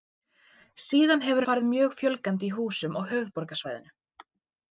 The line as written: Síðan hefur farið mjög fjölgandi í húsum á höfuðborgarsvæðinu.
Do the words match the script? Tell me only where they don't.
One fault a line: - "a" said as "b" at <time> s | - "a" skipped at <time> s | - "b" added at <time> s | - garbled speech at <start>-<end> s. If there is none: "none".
none